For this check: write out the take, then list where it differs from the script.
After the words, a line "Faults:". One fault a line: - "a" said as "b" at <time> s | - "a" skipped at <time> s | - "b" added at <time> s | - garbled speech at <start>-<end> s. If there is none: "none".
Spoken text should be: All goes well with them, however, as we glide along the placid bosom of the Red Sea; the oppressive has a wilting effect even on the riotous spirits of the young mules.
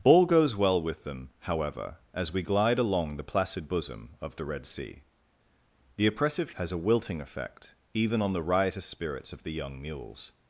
All goes well with them, however, as we glide along the placid bosom of the Red Sea; the oppressive has a wilting effect even on the riotous spirits of the young mules.
Faults:
none